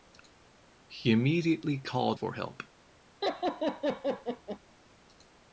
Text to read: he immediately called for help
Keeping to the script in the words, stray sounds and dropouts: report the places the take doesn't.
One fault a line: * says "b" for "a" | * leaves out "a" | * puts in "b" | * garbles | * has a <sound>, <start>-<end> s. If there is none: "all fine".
* has a laugh, 3.2-4.6 s